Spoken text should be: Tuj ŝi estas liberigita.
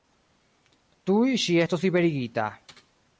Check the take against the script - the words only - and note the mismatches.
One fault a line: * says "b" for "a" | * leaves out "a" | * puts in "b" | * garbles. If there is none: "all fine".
* says "estos" for "estas"